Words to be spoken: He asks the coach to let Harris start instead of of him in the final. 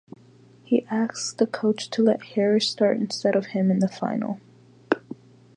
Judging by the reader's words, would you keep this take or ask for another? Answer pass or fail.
fail